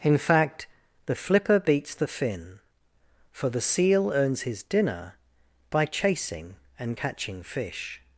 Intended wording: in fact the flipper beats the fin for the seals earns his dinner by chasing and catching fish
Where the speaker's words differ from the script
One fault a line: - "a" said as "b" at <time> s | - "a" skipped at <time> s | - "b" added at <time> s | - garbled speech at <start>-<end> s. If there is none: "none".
- "seals" said as "seal" at 3.6 s